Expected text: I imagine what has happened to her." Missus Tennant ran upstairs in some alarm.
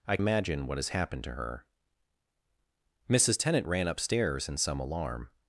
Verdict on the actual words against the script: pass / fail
pass